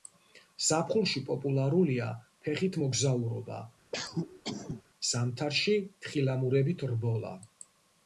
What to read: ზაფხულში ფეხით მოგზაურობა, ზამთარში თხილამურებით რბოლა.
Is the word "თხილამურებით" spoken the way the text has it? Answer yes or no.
yes